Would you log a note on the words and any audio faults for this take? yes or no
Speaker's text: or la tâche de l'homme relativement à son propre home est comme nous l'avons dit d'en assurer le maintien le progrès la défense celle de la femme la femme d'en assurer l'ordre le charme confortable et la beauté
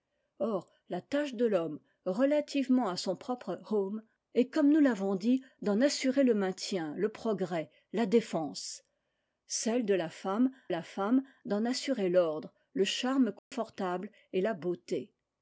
yes